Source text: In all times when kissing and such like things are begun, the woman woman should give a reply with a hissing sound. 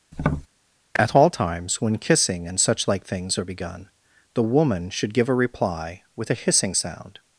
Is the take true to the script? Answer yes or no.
no